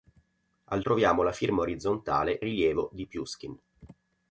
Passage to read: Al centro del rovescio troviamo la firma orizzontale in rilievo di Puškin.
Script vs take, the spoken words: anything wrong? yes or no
yes